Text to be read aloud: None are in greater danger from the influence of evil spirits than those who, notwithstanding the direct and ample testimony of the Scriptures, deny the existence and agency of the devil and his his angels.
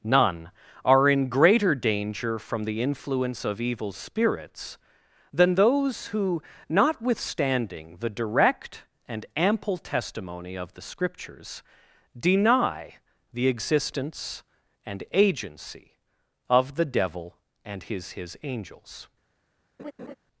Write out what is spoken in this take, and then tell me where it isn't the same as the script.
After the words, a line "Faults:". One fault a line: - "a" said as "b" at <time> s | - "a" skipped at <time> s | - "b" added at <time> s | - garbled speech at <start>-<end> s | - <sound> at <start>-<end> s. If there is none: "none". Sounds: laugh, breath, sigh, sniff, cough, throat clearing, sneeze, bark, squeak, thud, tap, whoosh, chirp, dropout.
None are in greater danger from the influence of evil spirits than those who, notwithstanding the direct and ample testimony of the Scriptures, deny the existence and agency of the devil and his his angels.
Faults:
- laugh at 19.8-20.2 s